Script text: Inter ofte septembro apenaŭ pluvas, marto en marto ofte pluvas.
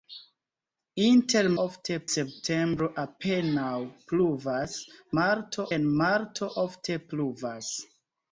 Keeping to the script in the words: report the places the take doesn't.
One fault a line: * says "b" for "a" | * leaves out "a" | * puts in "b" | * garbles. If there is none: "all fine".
all fine